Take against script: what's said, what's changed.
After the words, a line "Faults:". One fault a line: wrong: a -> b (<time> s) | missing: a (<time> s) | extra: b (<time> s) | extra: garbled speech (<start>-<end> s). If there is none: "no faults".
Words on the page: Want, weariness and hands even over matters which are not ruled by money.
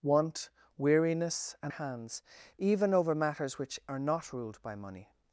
Want, weariness and hands even over matters which are not ruled by money.
Faults:
no faults